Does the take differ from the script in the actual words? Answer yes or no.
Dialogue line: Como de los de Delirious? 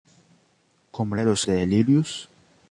no